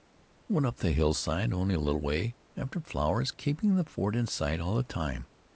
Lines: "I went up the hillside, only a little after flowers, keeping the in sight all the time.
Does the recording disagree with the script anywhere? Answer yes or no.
yes